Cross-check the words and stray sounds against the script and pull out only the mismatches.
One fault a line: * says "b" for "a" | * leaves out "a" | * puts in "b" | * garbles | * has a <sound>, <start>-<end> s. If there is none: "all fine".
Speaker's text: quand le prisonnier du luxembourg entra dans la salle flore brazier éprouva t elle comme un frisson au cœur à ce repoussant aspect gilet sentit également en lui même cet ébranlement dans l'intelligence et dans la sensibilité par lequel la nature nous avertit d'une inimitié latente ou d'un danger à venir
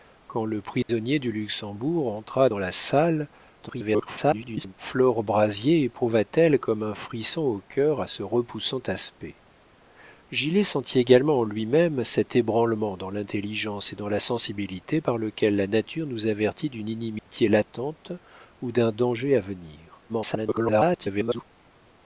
* has a dropout, 0.8-0.9 s
* garbles
* has a dropout, 17.2-17.3 s
* garbles